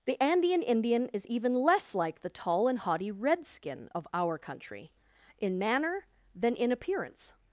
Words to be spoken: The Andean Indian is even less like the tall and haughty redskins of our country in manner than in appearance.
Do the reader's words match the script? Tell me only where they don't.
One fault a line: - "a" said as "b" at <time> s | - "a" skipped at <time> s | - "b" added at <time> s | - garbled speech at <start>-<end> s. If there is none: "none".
- "redskins" said as "redskin" at 3.1 s